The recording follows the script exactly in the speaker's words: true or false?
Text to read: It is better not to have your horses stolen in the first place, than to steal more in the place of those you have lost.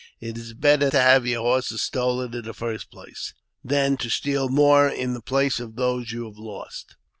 false